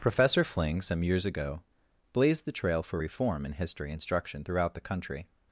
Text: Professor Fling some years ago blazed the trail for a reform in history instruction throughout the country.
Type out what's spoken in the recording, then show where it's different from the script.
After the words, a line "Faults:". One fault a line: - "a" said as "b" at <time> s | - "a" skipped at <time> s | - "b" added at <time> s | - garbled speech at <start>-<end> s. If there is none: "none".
Professor Fling some years ago blazed the trail for reform in history instruction throughout the country.
Faults:
- "a" skipped at 3.0 s